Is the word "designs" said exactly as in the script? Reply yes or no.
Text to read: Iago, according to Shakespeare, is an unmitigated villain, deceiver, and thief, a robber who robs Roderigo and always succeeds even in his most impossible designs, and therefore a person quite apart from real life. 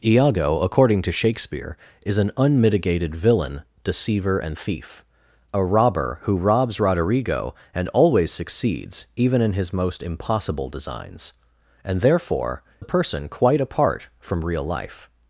yes